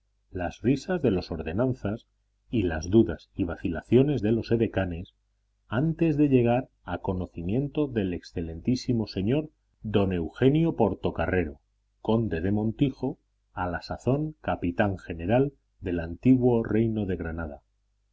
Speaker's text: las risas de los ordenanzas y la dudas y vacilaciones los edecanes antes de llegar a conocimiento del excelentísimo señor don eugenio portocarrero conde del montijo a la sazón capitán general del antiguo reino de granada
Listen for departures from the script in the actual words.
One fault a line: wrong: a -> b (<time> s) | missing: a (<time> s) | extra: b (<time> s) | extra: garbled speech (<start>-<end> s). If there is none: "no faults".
wrong: la -> las (2.6 s)
extra: de (4.2 s)